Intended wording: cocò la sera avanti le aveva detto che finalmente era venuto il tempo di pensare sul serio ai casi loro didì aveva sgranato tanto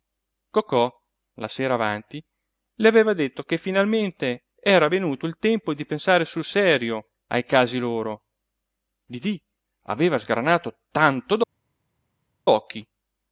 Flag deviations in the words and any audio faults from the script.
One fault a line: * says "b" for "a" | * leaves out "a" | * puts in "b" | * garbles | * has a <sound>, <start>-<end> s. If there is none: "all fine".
all fine